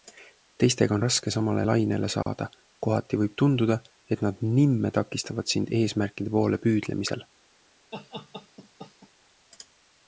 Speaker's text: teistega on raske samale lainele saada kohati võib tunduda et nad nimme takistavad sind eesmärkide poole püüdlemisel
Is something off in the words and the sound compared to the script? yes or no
yes